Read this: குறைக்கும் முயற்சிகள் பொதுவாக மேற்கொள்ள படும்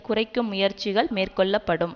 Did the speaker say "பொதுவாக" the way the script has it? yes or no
no